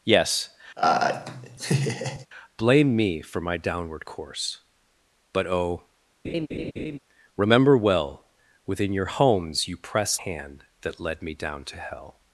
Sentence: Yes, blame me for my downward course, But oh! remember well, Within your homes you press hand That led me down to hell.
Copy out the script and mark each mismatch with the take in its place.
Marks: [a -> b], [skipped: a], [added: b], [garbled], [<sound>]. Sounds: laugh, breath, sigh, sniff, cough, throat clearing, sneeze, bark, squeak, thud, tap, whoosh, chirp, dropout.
Yes, [laugh] blame me for my downward course, But oh! [laugh] remember well, Within your homes you press hand That led me down to hell.